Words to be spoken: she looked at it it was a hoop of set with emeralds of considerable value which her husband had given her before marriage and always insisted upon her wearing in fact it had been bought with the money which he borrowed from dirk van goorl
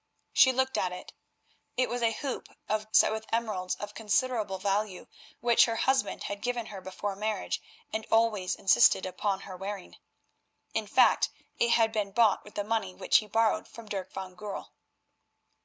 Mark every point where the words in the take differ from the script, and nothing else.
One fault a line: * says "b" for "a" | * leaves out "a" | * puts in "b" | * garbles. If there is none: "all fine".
all fine